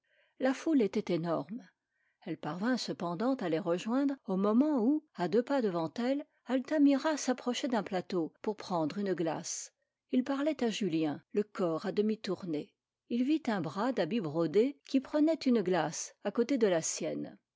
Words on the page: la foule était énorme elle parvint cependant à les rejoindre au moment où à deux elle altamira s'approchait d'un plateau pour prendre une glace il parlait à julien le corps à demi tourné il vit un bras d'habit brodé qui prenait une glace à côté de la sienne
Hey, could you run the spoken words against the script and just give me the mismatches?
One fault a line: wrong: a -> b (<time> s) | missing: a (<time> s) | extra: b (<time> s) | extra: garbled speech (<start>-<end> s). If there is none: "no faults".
extra: pas devant (5.4 s)